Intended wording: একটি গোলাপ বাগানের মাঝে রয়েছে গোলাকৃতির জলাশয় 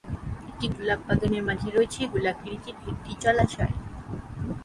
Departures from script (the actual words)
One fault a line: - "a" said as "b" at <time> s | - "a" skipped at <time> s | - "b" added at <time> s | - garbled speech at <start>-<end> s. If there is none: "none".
- "একটি" added at 2.9 s